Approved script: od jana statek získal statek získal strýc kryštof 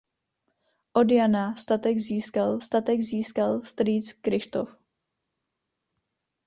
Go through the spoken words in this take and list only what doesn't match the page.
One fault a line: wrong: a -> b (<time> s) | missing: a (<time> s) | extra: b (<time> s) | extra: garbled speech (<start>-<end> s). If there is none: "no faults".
no faults